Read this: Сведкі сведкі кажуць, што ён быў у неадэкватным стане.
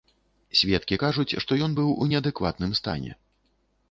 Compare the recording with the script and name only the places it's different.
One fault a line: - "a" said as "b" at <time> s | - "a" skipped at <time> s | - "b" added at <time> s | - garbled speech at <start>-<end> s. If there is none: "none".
- "сведкі" skipped at 1.0 s